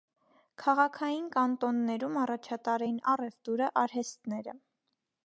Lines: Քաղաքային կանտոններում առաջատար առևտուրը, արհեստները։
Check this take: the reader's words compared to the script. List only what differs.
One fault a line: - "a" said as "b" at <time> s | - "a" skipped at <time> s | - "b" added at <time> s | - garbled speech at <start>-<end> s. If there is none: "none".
- "էին" added at 2.8 s